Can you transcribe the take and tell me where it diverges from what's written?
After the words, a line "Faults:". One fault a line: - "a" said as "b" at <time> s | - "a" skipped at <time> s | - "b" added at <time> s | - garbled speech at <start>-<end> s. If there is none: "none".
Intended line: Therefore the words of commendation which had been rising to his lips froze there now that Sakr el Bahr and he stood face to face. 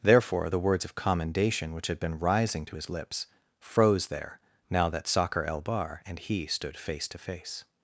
Therefore the words of commendation which had been rising to his lips froze there now that Sakr el Bahr and he stood face to face.
Faults:
none